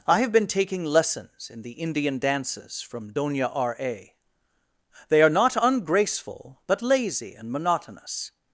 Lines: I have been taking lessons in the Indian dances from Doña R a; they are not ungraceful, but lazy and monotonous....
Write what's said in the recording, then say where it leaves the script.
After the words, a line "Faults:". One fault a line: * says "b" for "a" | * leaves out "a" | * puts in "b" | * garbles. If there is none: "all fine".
I have been taking lessons in the Indian dances from Doña R a; they are not ungraceful, but lazy and monotonous....
Faults:
all fine